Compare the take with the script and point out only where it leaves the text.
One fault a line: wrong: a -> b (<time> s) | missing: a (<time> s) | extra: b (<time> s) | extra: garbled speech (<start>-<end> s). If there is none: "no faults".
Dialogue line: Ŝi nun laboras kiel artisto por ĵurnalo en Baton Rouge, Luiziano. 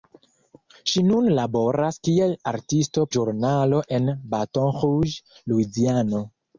missing: por (3.0 s)